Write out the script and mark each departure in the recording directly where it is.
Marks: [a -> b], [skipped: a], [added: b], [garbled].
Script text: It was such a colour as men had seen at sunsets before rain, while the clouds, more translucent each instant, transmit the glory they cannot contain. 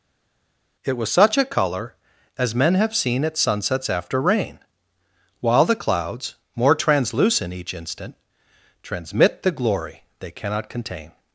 It was such a colour as men [had -> have] seen at sunsets [before -> after] rain, while the clouds, more translucent each instant, transmit the glory they cannot contain.